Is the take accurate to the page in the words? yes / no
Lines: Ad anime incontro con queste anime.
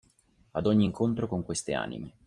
no